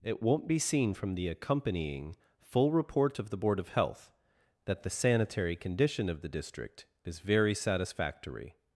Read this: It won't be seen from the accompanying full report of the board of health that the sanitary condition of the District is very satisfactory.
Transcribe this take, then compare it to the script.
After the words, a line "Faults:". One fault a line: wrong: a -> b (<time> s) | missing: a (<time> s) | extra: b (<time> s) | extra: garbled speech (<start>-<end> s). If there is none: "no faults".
It won't be seen from the accompanying full report of the board of health that the sanitary condition of the District is very satisfactory.
Faults:
no faults